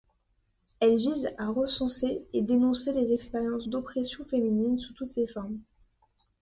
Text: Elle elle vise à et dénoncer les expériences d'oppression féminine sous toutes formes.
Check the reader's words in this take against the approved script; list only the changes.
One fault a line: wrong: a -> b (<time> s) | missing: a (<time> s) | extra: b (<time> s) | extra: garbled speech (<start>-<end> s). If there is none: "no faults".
missing: elle (0.9 s)
extra: recenser (1.5 s)
extra: ses (5.1 s)